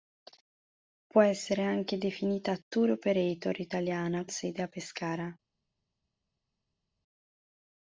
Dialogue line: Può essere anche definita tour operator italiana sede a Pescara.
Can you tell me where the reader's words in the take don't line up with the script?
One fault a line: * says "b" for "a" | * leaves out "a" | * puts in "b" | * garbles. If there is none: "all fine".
all fine